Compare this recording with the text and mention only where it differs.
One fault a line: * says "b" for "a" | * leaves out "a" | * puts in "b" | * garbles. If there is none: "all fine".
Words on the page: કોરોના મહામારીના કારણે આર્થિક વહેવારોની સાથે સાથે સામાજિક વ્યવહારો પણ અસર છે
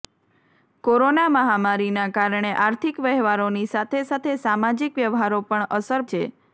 all fine